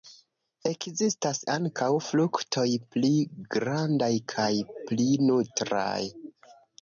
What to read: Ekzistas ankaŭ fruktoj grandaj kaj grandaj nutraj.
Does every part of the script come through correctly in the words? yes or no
no